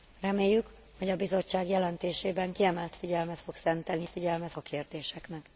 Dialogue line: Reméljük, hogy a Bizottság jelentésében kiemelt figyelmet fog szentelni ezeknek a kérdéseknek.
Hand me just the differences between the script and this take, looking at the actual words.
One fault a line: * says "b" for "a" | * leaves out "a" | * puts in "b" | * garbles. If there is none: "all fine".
* says "figyelmet" for "ezeknek"